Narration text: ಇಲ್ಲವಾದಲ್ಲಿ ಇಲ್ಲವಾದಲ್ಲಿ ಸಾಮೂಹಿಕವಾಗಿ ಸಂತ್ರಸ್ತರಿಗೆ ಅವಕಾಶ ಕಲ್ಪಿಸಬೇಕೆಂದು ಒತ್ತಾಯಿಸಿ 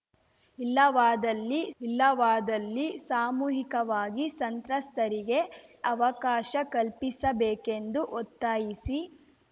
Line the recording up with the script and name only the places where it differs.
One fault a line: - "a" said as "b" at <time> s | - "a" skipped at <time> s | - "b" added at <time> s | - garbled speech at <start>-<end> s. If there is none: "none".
none